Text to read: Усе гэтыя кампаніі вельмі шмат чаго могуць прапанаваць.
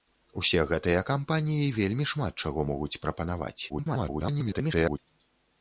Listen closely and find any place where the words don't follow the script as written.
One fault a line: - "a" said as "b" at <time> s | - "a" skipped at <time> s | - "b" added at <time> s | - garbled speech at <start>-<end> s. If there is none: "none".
- garbled speech at 3.7-5.0 s